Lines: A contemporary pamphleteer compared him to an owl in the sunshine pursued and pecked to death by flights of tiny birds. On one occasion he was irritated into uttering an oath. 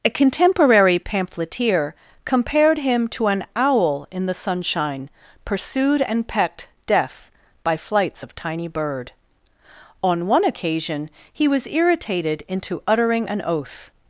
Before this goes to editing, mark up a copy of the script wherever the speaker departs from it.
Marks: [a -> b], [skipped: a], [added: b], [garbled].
A contemporary pamphleteer compared him to an owl in the sunshine pursued and pecked [skipped: to] death by flights of tiny [birds. -> bird] On one occasion he was irritated into uttering an oath.